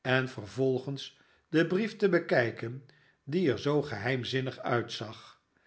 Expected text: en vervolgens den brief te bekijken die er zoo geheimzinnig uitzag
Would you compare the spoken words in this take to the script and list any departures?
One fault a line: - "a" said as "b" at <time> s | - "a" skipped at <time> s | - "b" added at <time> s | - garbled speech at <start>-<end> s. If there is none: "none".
none